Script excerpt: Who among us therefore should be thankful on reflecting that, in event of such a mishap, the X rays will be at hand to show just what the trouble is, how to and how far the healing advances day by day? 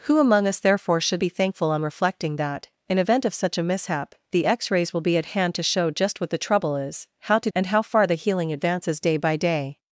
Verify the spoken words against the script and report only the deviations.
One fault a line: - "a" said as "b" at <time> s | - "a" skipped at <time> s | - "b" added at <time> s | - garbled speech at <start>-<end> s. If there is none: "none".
none